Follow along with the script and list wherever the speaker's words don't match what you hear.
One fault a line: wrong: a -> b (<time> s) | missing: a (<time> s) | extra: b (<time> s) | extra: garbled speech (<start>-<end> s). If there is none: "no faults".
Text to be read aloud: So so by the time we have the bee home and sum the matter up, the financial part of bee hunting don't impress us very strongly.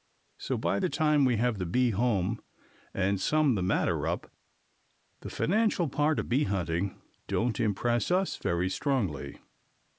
missing: so (0.6 s)